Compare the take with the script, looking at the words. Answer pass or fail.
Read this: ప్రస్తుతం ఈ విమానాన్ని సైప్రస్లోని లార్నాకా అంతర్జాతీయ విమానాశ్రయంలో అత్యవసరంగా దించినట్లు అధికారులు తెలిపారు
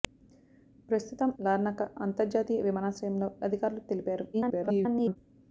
fail